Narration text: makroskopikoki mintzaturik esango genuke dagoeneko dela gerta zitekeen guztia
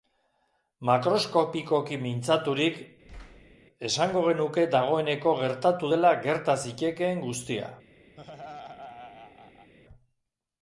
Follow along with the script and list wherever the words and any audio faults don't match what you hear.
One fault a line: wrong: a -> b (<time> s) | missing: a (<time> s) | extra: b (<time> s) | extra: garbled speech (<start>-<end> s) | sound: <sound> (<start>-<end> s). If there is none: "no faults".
sound: thud (3.0-3.6 s)
extra: gertatu (5.4 s)
sound: laugh (8.2-9.7 s)